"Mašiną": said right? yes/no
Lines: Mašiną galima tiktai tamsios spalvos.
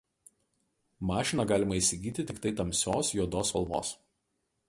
yes